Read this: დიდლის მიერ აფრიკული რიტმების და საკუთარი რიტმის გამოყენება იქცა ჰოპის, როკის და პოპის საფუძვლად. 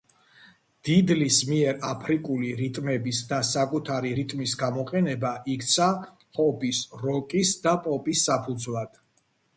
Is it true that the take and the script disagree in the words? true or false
false